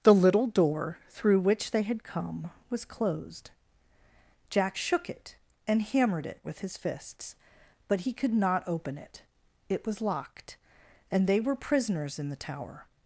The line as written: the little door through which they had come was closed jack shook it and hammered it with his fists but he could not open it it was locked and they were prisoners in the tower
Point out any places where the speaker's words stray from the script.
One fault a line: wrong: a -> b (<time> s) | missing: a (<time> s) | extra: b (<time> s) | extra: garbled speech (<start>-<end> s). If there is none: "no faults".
no faults